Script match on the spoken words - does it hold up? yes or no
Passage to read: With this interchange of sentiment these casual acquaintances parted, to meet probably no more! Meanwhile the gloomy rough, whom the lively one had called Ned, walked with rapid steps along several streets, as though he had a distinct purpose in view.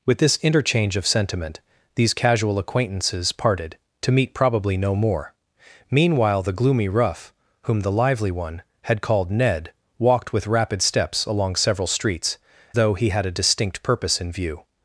no